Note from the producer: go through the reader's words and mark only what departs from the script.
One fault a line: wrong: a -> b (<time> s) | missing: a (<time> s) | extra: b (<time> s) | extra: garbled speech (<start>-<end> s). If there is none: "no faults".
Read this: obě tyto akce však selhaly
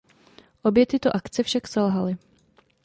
no faults